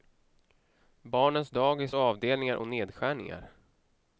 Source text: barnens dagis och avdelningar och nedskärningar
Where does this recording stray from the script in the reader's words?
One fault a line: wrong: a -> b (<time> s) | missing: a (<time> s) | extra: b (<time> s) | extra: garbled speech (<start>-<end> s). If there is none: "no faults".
no faults